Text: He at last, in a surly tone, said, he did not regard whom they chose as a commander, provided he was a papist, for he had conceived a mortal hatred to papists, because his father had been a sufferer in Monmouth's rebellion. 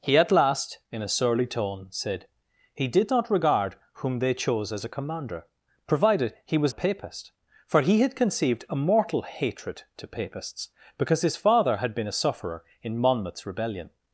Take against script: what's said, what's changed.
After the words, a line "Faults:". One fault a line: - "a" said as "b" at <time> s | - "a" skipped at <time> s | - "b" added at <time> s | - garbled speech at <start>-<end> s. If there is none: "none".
He at last, in a surly tone, said, he did not regard whom they chose as a commander, provided he was a papist, for he had conceived a mortal hatred to papists, because his father had been a sufferer in Monmouth's rebellion.
Faults:
none